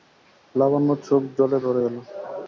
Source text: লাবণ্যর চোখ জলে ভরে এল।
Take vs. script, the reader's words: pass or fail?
pass